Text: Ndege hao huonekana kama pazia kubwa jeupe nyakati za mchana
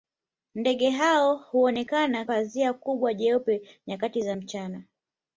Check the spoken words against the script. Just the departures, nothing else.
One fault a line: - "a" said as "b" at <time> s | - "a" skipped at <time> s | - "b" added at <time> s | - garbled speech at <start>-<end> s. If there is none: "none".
- "kama" skipped at 2.2 s